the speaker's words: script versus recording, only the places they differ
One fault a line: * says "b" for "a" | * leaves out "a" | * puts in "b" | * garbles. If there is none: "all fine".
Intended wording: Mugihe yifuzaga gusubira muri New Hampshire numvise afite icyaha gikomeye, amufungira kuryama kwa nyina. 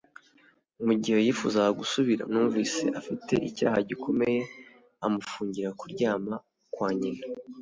* leaves out "muri New Hampshire"